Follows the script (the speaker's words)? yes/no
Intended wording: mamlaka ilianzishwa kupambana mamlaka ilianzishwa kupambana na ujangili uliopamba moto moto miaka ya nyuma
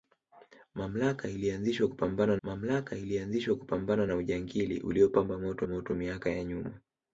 yes